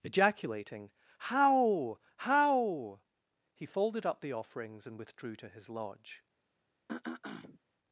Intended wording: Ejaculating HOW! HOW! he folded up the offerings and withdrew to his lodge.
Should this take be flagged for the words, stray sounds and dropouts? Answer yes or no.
yes